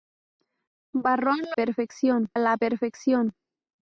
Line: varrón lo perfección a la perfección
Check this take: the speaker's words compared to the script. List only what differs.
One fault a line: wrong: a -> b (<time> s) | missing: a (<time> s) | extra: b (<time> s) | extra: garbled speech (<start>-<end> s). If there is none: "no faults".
no faults